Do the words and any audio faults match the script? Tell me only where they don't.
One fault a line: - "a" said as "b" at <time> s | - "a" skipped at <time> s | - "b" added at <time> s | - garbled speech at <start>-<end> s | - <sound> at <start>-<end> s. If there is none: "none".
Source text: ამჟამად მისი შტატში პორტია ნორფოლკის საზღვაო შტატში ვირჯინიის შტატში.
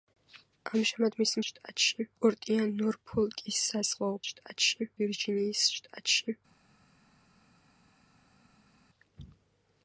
none